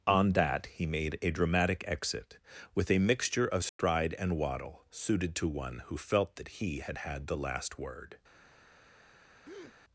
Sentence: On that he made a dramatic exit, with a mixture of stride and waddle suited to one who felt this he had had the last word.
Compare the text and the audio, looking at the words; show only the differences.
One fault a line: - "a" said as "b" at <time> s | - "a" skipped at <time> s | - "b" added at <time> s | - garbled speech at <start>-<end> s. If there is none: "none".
- "this" said as "that" at 6.4 s